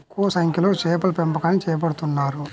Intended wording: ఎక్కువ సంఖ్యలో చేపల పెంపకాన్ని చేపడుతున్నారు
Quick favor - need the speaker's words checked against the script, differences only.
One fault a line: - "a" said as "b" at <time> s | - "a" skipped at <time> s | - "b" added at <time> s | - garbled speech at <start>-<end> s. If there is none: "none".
none